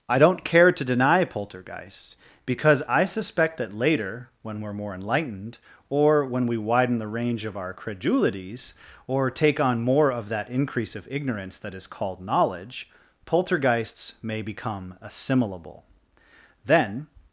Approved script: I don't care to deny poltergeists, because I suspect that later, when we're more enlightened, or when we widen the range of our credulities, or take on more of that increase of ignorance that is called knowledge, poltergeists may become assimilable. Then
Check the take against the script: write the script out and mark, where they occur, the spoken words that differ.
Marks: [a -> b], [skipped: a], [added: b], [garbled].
I don't care to deny poltergeists, because I suspect that later, when we're more enlightened, or when we widen the range of our credulities, or take on more of that increase of ignorance that is called knowledge, poltergeists may become assimilable. Then